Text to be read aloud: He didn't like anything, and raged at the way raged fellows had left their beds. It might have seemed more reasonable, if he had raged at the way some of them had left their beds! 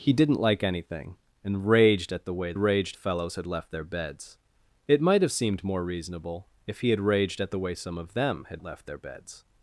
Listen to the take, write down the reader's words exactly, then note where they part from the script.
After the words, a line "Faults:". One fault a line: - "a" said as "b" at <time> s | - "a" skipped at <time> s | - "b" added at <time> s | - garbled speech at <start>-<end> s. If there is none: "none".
He didn't like anything, and raged at the way raged fellows had left their beds. It might have seemed more reasonable, if he had raged at the way some of them had left their beds!
Faults:
none